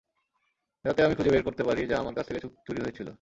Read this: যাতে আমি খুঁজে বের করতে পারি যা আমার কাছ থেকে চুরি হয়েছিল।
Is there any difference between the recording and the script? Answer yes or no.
no